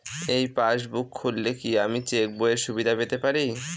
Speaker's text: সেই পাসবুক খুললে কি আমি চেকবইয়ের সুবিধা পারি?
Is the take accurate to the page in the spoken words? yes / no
no